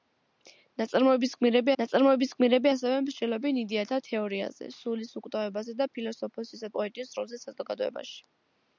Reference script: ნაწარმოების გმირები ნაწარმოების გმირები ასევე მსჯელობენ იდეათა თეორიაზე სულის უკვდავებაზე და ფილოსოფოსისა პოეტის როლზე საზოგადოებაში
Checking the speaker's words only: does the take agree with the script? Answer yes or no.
yes